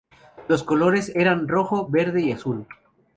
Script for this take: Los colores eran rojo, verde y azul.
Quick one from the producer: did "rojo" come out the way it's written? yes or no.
yes